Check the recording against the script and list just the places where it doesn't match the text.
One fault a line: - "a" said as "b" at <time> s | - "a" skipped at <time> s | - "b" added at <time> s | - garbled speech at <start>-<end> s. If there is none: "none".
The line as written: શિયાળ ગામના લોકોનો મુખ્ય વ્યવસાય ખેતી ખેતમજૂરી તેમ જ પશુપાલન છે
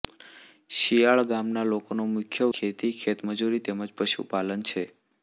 - "વ્યવસાય" skipped at 2.5 s